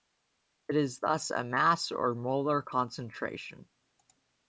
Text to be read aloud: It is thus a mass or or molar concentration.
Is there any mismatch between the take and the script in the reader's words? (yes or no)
yes